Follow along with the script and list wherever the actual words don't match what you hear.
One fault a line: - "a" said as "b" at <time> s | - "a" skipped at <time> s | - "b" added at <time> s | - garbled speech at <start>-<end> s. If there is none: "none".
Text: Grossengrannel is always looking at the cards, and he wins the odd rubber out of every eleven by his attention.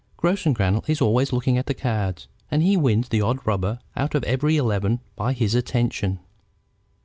none